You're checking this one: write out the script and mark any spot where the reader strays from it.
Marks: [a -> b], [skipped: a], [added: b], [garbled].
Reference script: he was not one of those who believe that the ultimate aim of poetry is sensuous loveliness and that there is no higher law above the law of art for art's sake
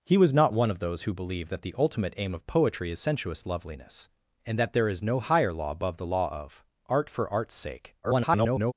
he was not one of those who believe that the ultimate aim of poetry is sensuous loveliness and that there is no higher law above the law of art for art's sake [garbled]